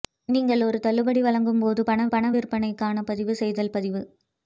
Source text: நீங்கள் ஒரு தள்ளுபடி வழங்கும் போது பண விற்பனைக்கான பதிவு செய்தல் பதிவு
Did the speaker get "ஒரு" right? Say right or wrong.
right